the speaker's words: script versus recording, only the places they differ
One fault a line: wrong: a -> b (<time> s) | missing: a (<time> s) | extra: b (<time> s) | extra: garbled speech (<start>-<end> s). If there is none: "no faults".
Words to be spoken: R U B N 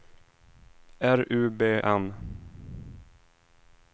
no faults